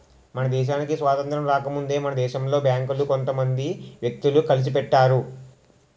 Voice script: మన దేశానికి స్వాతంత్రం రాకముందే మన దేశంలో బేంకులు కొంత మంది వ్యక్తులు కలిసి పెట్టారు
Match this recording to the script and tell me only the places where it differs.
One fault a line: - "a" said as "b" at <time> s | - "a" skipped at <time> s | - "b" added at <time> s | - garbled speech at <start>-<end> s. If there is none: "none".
none